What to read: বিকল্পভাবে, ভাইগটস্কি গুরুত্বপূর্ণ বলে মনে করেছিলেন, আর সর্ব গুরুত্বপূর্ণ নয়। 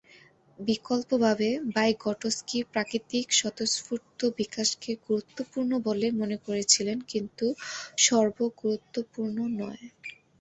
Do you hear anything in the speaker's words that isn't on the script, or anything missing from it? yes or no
yes